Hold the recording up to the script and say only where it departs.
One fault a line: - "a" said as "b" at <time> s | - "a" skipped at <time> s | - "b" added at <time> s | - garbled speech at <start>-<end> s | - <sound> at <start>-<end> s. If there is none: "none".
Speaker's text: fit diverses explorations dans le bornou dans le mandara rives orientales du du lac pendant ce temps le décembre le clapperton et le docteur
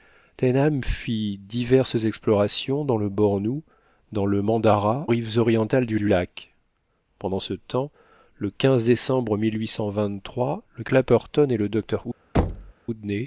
- thud at 12.3-12.7 s